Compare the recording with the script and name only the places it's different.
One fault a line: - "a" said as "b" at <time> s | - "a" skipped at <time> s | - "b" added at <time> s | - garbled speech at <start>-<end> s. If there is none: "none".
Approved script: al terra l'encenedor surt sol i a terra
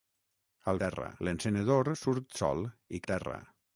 none